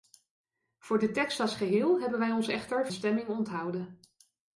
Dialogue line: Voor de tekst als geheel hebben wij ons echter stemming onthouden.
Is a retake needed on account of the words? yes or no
no